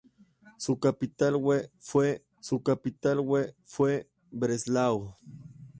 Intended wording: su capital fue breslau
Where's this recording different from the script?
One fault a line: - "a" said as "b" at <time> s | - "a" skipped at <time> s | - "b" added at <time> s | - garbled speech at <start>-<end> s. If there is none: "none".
- "su capital fue" added at 2.4 s